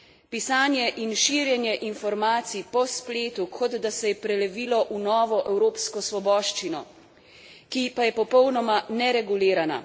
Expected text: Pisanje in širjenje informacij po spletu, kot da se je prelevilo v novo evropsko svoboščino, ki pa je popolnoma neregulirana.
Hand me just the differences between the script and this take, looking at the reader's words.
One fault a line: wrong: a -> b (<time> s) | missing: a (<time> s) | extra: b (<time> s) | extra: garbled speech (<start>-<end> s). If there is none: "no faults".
no faults